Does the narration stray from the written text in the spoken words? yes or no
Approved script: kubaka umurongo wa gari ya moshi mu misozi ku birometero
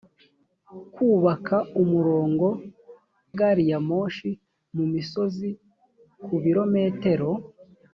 yes